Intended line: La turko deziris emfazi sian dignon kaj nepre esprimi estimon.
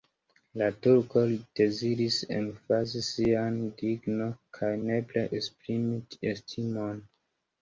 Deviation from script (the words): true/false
false